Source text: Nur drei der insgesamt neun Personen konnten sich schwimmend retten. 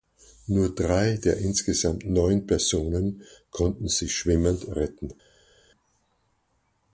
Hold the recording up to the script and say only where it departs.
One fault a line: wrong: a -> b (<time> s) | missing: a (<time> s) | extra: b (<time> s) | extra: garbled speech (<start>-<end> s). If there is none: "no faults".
no faults